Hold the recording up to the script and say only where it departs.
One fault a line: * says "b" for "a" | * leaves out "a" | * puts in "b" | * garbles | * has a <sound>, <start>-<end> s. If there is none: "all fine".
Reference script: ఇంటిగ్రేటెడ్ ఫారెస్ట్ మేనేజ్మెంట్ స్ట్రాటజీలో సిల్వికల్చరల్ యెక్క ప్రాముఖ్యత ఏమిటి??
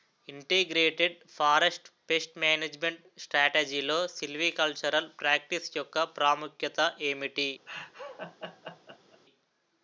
* puts in "పేస్ట్"
* puts in "ప్రాక్టీస్"
* has a laugh, 7.7-9.2 s